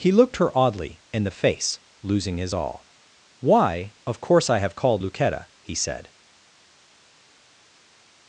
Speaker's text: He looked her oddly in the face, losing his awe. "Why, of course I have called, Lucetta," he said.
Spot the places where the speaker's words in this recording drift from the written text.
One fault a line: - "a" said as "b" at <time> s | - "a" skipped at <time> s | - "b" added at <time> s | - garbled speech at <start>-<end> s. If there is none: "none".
- "awe" said as "all" at 2.5 s